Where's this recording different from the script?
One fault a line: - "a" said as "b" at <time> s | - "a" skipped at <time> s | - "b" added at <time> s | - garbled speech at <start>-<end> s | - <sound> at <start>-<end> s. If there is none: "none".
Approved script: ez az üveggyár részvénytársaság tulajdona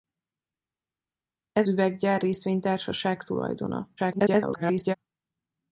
- "az" skipped at 1.7 s
- garbled speech at 4.0-4.9 s